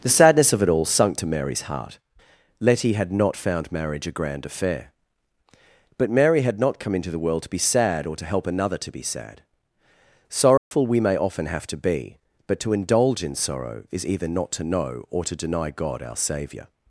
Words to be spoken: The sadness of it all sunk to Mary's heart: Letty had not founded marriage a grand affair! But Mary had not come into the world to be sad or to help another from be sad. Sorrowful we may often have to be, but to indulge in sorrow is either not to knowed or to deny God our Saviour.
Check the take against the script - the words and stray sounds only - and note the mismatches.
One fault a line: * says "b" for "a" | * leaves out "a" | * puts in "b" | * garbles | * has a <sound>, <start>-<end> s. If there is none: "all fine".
* says "found" for "founded"
* says "to" for "from"
* has a dropout, 10.6-10.7 s
* says "know" for "knowed"